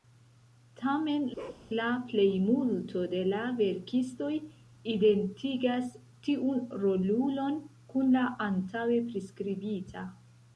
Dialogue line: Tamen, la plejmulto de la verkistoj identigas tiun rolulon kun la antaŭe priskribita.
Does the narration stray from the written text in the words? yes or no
no